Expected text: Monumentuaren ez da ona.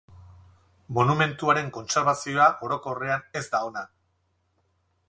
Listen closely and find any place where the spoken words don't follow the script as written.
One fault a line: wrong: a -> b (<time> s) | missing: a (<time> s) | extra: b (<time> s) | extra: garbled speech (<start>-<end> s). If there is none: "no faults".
extra: kontserbazioa orokorrean (1.8 s)